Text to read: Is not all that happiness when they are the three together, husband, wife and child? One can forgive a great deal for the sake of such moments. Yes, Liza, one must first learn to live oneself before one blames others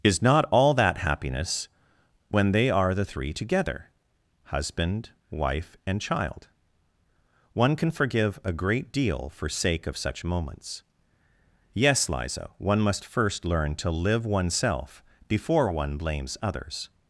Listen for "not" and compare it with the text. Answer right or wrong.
right